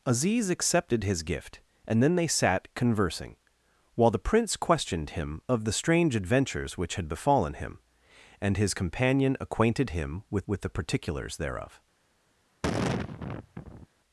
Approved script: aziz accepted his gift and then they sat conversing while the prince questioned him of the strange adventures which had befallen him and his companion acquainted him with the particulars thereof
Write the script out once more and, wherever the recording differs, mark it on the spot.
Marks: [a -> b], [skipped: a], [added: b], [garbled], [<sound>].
aziz accepted his gift and then they sat conversing while the prince questioned him of the strange adventures which had befallen him and his companion acquainted him with [added: with] the particulars thereof [sigh]